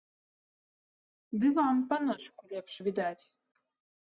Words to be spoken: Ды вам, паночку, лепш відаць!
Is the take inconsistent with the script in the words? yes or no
no